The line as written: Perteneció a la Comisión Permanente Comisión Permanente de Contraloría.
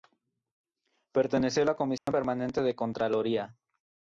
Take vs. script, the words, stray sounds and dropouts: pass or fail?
fail